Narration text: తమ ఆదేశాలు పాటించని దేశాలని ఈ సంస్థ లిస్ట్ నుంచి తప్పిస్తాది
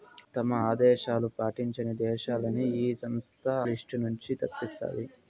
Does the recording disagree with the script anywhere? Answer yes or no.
no